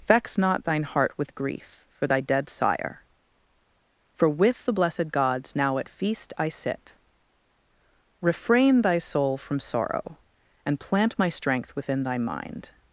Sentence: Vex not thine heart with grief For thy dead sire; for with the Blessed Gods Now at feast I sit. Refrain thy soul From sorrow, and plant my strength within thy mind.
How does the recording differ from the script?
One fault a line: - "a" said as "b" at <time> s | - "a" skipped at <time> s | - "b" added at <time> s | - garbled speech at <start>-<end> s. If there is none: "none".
none